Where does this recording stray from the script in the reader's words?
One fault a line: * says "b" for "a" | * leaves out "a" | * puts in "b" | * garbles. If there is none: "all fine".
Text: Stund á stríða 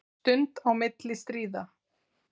* puts in "milli"